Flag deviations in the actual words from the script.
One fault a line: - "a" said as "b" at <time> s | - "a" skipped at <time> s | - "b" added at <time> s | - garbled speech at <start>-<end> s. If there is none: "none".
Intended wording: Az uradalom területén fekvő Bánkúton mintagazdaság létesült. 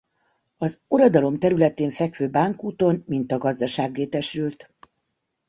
none